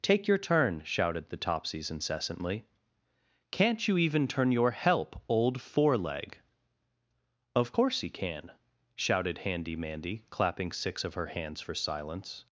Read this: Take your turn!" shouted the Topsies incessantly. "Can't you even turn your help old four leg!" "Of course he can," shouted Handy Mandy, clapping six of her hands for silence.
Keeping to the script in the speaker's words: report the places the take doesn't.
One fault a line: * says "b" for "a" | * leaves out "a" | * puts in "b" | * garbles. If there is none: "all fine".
all fine